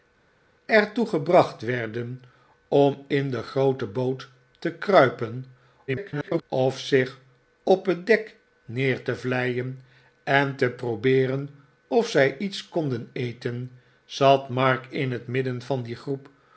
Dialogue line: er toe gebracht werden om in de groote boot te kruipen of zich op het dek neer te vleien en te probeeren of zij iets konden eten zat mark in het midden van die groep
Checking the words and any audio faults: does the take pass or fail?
fail